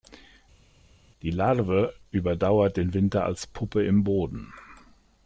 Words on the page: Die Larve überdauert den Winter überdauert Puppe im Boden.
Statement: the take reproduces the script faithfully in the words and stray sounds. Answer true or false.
false